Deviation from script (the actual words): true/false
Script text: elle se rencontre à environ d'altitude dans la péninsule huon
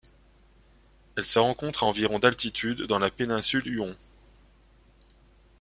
false